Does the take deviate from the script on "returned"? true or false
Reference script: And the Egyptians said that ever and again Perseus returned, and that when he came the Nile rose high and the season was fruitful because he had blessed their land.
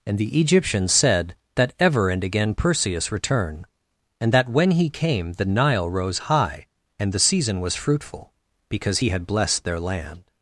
true